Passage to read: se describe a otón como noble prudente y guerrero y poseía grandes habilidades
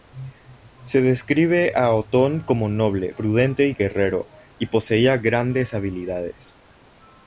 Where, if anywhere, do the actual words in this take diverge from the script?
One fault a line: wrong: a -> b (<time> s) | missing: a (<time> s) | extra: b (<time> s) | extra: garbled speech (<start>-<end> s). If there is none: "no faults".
no faults